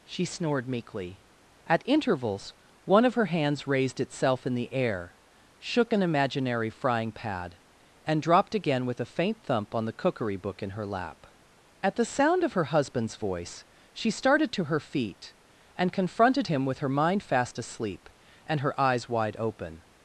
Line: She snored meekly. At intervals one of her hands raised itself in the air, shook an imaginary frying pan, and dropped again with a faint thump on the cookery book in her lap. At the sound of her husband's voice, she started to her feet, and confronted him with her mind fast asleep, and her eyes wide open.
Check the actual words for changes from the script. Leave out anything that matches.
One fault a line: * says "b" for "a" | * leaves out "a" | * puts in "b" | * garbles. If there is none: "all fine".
* says "pad" for "pan"